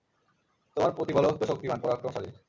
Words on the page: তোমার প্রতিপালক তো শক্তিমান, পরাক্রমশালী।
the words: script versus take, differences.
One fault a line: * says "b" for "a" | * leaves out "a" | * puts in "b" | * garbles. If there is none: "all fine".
all fine